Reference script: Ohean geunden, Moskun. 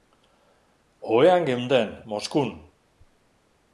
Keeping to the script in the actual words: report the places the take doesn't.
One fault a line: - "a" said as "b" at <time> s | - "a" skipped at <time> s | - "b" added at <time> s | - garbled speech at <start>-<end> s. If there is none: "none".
none